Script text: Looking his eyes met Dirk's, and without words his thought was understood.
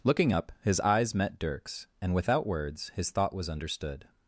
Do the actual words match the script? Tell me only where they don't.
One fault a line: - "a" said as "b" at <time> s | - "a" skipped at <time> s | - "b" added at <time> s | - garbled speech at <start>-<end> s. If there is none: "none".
- "up" added at 0.3 s